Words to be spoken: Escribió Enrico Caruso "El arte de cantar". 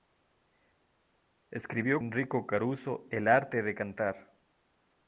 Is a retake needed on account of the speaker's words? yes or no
no